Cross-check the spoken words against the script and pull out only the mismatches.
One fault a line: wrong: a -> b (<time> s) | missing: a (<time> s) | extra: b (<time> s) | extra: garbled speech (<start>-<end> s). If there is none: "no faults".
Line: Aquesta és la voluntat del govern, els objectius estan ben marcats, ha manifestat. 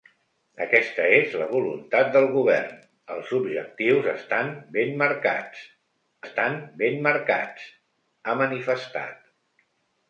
extra: estan ben marcats (6.2 s)